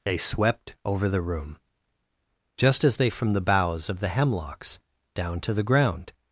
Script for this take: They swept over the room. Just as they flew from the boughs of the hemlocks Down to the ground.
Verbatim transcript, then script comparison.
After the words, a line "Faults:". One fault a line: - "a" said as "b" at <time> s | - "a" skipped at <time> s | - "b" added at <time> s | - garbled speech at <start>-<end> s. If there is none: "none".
They swept over the room. Just as they from the boughs of the hemlocks Down to the ground.
Faults:
- "flew" skipped at 3.1 s